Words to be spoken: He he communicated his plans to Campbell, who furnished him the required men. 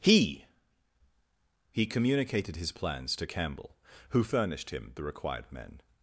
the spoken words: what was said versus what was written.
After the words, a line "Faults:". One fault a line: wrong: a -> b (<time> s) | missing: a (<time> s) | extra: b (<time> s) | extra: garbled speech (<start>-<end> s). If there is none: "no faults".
He he communicated his plans to Campbell, who furnished him the required men.
Faults:
no faults